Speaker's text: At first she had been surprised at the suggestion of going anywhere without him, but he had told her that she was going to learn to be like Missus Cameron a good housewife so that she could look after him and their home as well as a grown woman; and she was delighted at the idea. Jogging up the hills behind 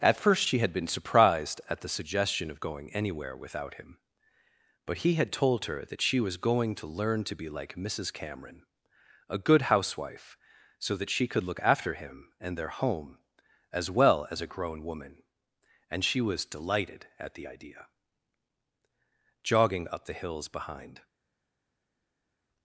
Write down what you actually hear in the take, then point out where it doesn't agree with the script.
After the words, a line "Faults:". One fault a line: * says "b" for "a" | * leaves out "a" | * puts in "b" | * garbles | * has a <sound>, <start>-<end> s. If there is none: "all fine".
At first she had been surprised at the suggestion of going anywhere without him, but he had told her that she was going to learn to be like Missus Cameron a good housewife so that she could look after him and their home as well as a grown woman; and she was delighted at the idea. Jogging up the hills behind
Faults:
all fine